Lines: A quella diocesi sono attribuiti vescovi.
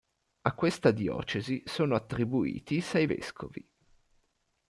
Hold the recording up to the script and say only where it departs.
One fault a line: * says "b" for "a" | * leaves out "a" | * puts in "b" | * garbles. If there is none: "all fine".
* says "questa" for "quella"
* puts in "sei"